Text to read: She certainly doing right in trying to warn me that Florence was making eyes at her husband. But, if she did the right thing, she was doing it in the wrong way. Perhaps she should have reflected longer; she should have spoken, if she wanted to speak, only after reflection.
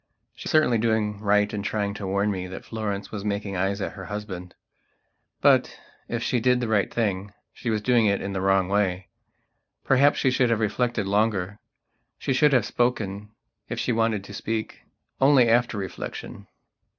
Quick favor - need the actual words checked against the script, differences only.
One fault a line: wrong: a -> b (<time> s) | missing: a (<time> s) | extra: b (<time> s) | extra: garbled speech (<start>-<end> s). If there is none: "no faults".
no faults